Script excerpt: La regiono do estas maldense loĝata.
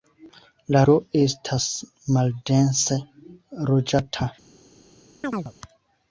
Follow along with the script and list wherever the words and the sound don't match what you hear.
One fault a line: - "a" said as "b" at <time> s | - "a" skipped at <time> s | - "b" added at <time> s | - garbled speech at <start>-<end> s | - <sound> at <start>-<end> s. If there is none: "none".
- "regiono" skipped at 0.8 s
- chirp at 5.2-5.5 s